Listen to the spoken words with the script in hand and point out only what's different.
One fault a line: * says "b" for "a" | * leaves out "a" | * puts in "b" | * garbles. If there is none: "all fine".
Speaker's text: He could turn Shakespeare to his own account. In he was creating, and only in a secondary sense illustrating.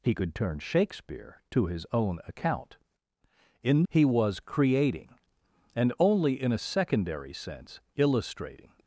all fine